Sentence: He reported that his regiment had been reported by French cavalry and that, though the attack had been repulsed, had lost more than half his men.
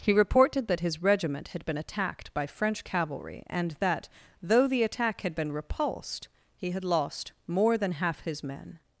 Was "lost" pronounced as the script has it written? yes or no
yes